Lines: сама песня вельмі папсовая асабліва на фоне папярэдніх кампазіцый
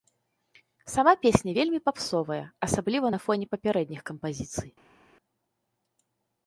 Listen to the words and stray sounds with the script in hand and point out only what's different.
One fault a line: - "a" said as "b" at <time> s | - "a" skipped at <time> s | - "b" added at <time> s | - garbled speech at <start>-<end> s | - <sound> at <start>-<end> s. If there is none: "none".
none